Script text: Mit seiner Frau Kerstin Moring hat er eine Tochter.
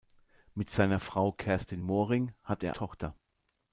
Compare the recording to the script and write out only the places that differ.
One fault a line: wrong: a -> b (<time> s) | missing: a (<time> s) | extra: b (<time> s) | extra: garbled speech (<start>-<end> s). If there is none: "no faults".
missing: eine (2.7 s)